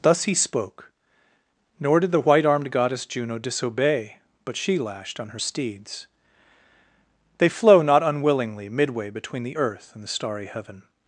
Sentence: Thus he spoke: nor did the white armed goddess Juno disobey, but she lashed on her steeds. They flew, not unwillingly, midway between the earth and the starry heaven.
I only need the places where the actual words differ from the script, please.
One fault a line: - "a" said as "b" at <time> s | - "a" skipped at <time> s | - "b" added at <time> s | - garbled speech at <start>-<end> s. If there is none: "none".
- "flew" said as "flow" at 7.5 s